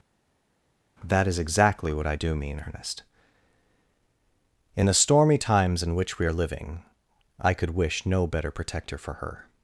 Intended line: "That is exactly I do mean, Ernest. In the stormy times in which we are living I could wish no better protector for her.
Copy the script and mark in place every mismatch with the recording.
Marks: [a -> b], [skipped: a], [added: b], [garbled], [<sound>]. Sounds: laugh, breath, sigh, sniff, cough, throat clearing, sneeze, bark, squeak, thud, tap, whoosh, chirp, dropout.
"That is exactly [added: what] I do mean, Ernest. In the stormy times in which we are living I could wish no better protector for her.